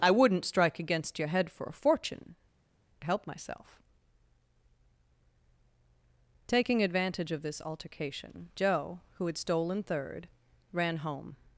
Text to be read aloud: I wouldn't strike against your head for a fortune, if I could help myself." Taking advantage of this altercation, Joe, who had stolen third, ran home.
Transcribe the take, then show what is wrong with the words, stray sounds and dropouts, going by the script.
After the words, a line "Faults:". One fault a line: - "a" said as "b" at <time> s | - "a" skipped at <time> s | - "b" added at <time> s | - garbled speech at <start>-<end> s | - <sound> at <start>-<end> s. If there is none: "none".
I wouldn't strike against your head for a fortune, help myself." Taking advantage of this altercation, Joe, who had stolen third, ran home.
Faults:
- "if I could" skipped at 2.4 s